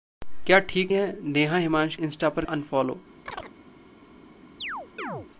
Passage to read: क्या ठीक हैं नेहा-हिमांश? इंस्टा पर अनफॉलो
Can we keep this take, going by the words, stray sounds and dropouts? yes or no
no